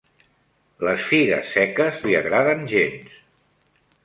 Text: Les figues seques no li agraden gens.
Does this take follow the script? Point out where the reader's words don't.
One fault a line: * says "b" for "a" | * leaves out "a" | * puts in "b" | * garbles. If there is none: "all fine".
* leaves out "no"